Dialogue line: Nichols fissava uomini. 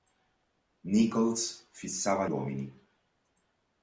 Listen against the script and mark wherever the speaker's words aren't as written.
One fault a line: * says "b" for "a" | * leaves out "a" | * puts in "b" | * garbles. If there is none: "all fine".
all fine